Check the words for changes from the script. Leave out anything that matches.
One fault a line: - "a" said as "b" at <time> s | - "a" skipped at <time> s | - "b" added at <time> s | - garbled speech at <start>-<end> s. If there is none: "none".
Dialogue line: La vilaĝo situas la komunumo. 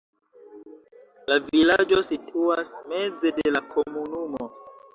- "meze de" added at 3.0 s